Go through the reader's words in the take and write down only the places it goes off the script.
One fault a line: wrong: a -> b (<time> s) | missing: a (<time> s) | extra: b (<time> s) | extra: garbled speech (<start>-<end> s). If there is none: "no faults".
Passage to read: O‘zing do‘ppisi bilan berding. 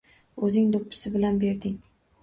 no faults